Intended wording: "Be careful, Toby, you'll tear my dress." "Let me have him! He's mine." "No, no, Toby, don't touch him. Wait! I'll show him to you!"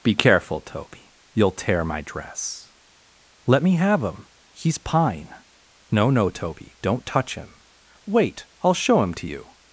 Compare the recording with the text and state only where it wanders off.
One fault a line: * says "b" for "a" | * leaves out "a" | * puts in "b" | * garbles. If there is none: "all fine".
* says "pine" for "mine"